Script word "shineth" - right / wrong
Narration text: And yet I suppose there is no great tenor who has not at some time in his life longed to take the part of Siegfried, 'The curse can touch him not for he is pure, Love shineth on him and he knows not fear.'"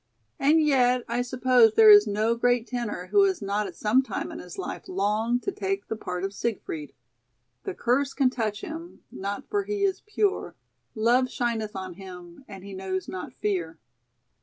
right